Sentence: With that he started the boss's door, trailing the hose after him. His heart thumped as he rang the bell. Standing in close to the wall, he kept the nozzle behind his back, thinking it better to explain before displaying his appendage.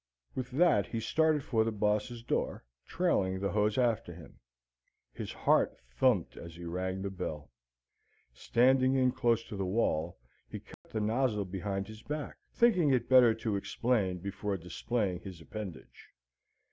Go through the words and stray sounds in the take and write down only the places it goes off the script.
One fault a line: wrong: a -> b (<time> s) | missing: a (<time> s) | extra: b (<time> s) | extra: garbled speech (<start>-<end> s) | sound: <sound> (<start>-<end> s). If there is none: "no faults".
extra: for (1.4 s)
sound: dropout (10.7-10.8 s)